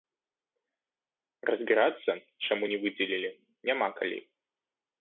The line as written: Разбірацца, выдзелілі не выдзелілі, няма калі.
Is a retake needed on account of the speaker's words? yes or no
yes